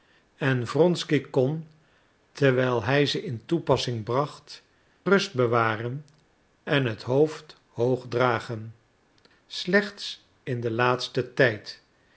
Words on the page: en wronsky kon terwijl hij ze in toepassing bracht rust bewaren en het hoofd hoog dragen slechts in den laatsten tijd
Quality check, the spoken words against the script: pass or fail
pass